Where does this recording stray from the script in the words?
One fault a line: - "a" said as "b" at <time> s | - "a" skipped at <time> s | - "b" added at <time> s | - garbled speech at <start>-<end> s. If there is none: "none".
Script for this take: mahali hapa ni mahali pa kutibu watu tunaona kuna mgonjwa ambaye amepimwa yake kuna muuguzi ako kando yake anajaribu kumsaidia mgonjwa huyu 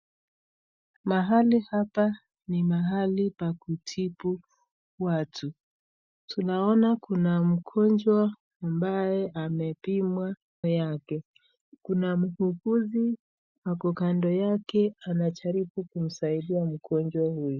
none